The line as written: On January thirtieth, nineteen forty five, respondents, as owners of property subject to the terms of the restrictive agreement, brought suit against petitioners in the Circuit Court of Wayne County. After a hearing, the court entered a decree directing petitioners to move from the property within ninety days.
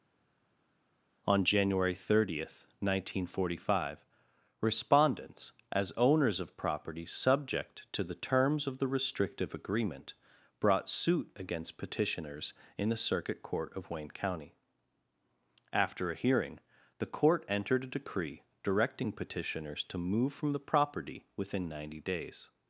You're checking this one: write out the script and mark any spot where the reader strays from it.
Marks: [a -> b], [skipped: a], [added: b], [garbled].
On January thirtieth, nineteen forty five, respondents, as owners of property subject to the terms of the restrictive agreement, brought suit against petitioners in the Circuit Court of Wayne County. After a hearing, the court entered a decree directing petitioners to move from the property within ninety days.